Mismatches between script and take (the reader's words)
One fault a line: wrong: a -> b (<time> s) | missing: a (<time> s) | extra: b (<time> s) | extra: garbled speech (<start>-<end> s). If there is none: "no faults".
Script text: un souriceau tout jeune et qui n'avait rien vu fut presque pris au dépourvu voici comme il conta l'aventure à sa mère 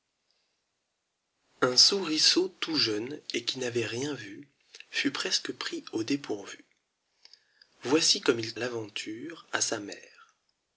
missing: conta (8.5 s)